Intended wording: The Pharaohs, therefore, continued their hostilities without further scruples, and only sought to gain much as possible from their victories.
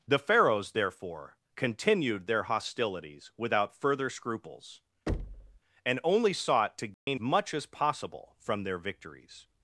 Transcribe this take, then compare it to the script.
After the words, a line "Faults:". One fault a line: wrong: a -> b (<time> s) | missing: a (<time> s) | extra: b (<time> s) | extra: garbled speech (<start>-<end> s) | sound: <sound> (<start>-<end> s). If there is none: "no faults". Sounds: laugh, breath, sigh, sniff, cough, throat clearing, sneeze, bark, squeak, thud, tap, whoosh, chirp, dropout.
The Pharaohs, therefore, continued their hostilities without further scruples, and only sought to gain much as possible from their victories.
Faults:
sound: thud (5.1-5.6 s)
sound: dropout (6.9-7.1 s)